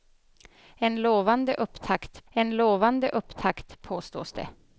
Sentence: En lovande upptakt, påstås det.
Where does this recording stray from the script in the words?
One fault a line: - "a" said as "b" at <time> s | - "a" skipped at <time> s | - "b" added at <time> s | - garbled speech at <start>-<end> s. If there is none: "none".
- "en lovande upptakt" added at 2.3 s